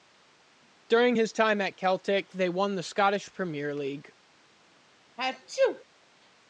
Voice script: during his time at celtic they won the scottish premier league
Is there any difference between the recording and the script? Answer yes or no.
no